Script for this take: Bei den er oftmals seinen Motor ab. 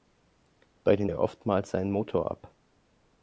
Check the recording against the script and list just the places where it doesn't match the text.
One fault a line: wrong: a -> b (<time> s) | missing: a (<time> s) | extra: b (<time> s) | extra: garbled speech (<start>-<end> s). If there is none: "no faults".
no faults